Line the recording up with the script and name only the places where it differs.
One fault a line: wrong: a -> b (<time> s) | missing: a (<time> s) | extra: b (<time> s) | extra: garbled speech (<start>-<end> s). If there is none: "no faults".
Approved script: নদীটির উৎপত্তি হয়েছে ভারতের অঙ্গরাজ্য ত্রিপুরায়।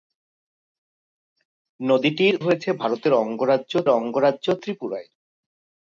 missing: উৎপত্তি (2.4 s)
extra: অঙ্গরাজ্য (3.9 s)